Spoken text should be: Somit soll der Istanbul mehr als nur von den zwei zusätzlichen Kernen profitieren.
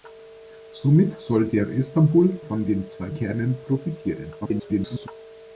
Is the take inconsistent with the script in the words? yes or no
yes